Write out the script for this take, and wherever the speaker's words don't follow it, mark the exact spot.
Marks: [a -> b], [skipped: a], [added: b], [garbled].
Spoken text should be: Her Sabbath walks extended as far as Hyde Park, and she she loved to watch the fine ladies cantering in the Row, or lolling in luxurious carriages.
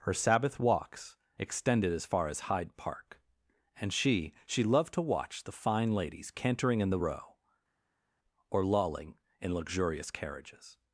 Her Sabbath walks extended as far as Hyde Park, and she she loved to watch the fine ladies cantering in the Row, or lolling in luxurious carriages.